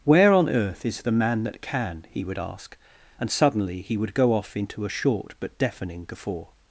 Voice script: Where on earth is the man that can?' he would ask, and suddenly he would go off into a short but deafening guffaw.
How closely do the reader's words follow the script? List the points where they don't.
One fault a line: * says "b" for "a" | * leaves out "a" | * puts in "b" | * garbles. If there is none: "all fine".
all fine